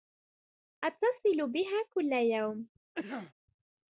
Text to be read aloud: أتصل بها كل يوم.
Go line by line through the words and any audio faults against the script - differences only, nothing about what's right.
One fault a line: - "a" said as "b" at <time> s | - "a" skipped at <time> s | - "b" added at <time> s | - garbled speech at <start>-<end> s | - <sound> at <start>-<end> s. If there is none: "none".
- cough at 2.9-3.3 s